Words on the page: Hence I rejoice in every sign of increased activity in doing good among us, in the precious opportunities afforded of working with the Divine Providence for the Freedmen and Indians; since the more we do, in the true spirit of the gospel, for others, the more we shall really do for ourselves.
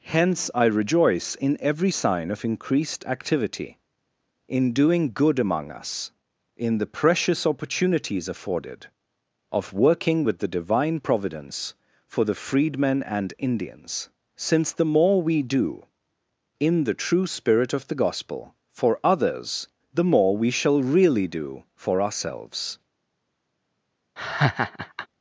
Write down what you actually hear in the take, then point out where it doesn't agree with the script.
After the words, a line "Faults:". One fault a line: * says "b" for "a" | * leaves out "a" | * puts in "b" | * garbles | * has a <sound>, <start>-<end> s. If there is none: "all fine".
Hence I rejoice in every sign of increased activity in doing good among us, in the precious opportunities afforded of working with the Divine Providence for the Freedmen and Indians; since the more we do, in the true spirit of the gospel, for others, the more we shall really do for ourselves.
Faults:
* has a laugh, 24.2-25.1 s